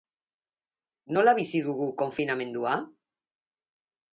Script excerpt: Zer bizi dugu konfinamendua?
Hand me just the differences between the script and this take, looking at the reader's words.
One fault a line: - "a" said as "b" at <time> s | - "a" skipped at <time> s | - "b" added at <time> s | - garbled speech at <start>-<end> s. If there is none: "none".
- "Zer" said as "Nola" at 1.2 s